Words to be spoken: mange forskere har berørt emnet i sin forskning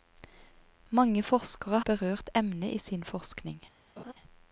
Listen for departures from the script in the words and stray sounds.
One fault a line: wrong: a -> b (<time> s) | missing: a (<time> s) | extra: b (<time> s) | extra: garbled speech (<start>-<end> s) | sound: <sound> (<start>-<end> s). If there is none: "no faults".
missing: har (1.8 s)
sound: laugh (4.0-4.1 s)